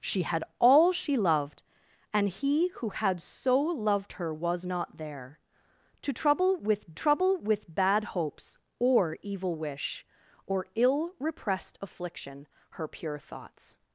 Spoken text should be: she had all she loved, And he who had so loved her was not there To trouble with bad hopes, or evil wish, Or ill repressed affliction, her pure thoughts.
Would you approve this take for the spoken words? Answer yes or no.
no